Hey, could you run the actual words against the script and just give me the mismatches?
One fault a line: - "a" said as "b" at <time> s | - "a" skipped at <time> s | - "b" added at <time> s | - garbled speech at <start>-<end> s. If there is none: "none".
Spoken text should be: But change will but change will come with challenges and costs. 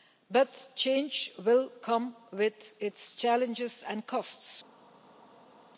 - "but change will" skipped at 1.7 s
- "its" added at 2.8 s